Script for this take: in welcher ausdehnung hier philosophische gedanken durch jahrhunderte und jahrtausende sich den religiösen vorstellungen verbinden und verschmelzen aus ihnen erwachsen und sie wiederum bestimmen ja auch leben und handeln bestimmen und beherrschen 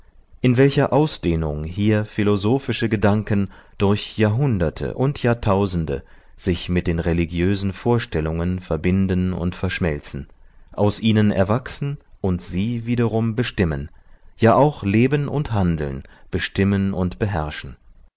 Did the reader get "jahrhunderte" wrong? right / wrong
right